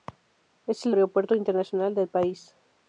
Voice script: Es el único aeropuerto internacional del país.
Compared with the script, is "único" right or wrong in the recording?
wrong